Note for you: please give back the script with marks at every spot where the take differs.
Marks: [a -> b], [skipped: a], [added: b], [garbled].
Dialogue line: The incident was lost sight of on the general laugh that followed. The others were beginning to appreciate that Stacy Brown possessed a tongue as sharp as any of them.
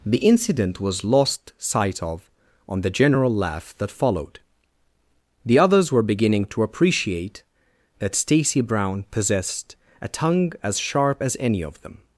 The incident was lost sight of on the general laugh that followed. The others were beginning to appreciate that Stacy Brown possessed a tongue as sharp as any of them.